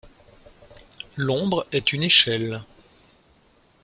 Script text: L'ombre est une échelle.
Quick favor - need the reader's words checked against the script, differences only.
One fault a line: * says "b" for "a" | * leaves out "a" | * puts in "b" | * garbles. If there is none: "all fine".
all fine